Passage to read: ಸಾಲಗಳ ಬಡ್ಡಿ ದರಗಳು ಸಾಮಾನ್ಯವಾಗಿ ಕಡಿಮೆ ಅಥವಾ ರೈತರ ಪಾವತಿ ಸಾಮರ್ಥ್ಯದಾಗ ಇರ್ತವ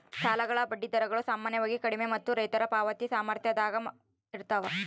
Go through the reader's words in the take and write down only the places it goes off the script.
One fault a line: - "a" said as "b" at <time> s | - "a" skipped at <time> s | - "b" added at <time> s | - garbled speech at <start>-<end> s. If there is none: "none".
- "ಅಥವಾ" said as "ಮತ್ತು" at 2.1 s